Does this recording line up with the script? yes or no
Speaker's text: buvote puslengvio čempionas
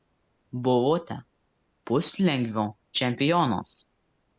yes